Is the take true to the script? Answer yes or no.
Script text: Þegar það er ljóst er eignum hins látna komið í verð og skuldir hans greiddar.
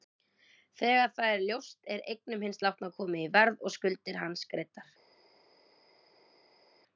yes